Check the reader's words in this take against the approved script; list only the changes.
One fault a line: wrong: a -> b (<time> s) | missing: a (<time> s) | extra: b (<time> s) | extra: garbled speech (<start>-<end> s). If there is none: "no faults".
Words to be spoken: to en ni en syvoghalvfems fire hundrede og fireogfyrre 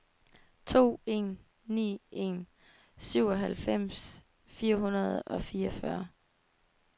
no faults